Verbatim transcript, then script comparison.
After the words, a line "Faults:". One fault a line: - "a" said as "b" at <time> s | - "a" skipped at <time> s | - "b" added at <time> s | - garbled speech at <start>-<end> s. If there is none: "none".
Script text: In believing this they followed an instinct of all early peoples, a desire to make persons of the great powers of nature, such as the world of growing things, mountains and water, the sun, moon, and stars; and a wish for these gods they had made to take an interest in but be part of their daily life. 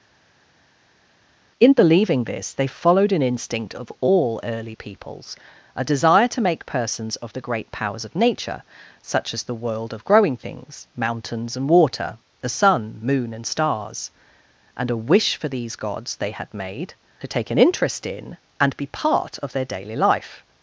In believing this they followed an instinct of all early peoples, a desire to make persons of the great powers of nature, such as the world of growing things, mountains and water, the sun, moon, and stars; and a wish for these gods they had made to take an interest in and be part of their daily life.
Faults:
- "but" said as "and" at 18.6 s